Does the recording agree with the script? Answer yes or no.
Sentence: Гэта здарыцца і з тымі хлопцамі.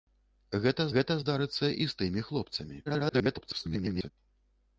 no